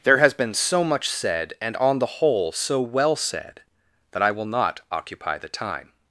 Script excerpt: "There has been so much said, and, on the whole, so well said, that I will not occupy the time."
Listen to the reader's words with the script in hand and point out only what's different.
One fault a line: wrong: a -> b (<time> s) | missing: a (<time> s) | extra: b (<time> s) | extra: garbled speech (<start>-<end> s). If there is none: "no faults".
no faults